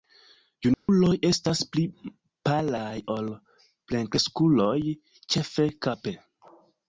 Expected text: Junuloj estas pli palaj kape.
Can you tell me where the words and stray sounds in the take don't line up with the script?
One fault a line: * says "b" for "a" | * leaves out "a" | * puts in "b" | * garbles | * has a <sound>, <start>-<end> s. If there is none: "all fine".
* has a dropout, 0.7-0.9 s
* puts in "ol plenkreskuloj ĉefe"